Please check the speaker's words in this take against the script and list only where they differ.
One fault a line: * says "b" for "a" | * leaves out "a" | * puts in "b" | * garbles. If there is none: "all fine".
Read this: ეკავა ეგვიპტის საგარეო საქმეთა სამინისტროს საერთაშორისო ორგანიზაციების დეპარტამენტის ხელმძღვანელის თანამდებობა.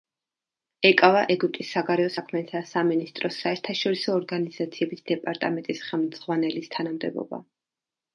all fine